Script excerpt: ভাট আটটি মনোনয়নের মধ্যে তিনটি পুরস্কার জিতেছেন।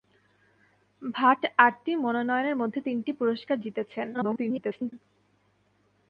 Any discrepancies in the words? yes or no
yes